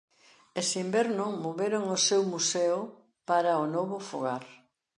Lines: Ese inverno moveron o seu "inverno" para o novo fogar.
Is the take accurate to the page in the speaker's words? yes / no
no